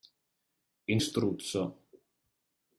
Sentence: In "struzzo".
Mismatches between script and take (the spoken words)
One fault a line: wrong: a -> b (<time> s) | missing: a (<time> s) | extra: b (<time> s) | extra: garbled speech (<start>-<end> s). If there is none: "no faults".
no faults